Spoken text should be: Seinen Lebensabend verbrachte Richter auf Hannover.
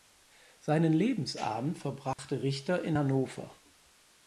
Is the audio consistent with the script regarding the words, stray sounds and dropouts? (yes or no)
no